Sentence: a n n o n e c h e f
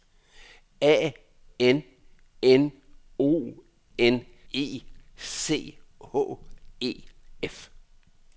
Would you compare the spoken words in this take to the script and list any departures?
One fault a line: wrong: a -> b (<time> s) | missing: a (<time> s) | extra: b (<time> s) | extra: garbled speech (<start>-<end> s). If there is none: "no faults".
no faults